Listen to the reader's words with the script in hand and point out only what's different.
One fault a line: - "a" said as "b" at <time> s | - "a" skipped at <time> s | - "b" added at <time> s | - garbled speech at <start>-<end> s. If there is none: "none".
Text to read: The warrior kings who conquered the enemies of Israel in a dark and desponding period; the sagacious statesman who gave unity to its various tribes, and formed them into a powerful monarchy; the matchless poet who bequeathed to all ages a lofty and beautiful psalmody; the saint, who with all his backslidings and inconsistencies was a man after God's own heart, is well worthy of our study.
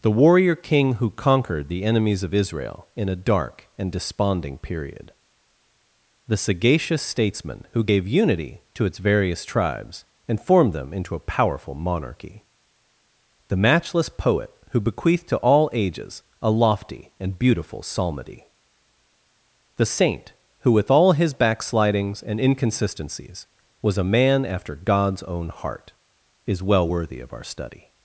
- "kings" said as "king" at 0.6 s